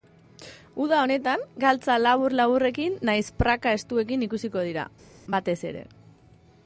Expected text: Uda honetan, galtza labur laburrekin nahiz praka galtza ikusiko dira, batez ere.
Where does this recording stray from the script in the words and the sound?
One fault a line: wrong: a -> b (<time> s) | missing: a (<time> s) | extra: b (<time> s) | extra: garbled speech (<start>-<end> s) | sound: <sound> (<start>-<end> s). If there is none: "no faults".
wrong: galtza -> estuekin (3.8 s)